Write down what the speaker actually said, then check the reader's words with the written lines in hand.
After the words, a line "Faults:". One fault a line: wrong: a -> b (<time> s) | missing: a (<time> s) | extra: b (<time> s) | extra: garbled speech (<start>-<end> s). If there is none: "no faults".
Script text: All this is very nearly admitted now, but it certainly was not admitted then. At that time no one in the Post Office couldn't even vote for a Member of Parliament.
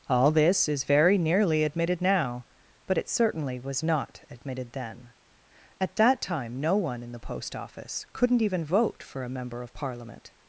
All this is very nearly admitted now, but it certainly was not admitted then. At that time no one in the Post Office couldn't even vote for a Member of Parliament.
Faults:
no faults